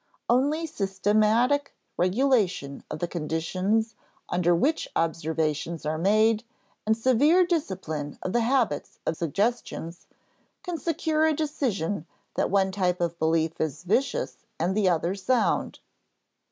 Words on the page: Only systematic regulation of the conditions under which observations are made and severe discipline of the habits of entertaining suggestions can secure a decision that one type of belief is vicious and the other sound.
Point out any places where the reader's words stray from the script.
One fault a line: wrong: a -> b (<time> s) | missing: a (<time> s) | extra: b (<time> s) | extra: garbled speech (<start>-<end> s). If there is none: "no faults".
missing: entertaining (9.2 s)